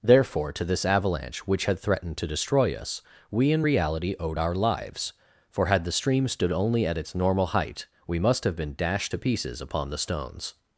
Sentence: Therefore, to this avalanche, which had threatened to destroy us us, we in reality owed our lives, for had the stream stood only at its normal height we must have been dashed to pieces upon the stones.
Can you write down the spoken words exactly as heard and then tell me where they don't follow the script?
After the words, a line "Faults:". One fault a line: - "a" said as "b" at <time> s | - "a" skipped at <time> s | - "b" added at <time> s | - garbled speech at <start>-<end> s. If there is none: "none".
Therefore, to this avalanche, which had threatened to destroy us, we in reality owed our lives, for had the stream stood only at its normal height we must have been dashed to pieces upon the stones.
Faults:
- "us" skipped at 3.0 s